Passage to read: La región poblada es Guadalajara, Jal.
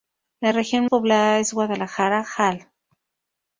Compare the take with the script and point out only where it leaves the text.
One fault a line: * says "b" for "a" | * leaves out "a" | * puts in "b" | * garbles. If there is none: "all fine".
all fine